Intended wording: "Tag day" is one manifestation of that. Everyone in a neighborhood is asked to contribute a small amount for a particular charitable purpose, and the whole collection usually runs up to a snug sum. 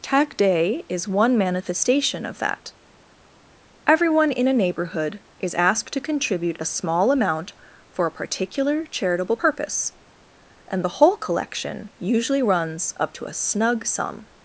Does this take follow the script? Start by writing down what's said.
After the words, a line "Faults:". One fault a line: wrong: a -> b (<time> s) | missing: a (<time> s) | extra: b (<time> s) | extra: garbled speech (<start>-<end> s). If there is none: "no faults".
"Tag day" is one manifestation of that. Everyone in a neighborhood is asked to contribute a small amount for a particular charitable purpose, and the whole collection usually runs up to a snug sum.
Faults:
no faults